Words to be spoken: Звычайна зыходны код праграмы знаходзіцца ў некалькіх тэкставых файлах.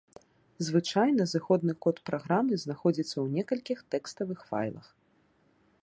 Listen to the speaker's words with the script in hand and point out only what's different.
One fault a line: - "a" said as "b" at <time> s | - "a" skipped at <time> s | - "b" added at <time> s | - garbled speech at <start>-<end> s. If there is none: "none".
none